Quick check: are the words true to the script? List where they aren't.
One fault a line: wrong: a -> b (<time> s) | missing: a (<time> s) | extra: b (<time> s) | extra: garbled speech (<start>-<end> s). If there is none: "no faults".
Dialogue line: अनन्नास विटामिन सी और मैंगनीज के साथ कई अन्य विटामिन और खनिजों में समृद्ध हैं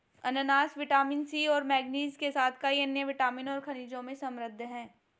no faults